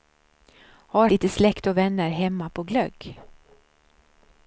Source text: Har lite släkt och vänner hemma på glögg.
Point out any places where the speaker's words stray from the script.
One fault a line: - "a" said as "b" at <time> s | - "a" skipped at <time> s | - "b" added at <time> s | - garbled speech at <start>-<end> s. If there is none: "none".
none